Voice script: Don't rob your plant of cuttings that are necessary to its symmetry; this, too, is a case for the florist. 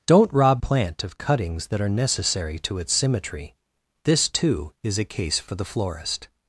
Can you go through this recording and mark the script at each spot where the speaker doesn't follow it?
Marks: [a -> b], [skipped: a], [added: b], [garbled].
Don't rob [skipped: your] plant of cuttings that are necessary to its symmetry; this, too, is a case for the florist.